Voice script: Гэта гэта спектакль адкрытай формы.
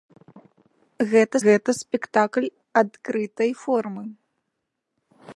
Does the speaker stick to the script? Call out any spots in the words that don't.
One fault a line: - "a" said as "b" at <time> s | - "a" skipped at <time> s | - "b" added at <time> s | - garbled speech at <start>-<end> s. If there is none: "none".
none